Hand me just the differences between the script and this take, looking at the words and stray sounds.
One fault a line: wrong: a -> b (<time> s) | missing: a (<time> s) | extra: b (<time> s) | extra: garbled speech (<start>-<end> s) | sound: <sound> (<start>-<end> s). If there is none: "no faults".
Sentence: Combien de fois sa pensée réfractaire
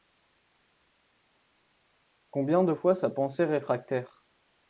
no faults